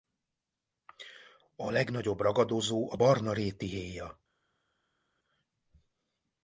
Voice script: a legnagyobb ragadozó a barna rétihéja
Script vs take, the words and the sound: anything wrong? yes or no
no